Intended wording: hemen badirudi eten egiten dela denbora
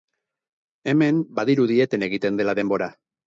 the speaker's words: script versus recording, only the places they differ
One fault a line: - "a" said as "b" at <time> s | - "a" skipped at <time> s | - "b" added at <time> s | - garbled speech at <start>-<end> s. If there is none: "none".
none